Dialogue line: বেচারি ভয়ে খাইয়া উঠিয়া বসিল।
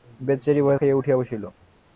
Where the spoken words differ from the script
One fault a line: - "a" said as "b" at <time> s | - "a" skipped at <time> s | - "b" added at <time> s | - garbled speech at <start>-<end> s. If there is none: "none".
none